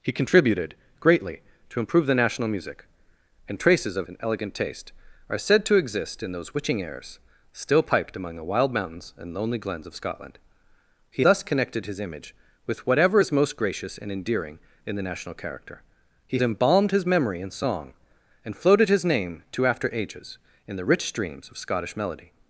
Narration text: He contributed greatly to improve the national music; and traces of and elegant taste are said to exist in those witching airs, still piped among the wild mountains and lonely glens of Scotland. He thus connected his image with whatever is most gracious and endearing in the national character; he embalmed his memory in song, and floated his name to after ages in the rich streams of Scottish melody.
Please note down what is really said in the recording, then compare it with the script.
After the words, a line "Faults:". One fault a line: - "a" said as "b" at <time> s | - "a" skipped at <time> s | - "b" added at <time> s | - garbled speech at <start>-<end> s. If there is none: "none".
He contributed greatly to improve the national music; and traces of and elegant taste are said to exist in those witching airs, still piped among the wild mountains and lonely glens of Scotland. He thus connected his image with whatever is most gracious and endearing in the national character; he embalmed his memory in song, and floated his name to after ages in the rich streams of Scottish melody.
Faults:
none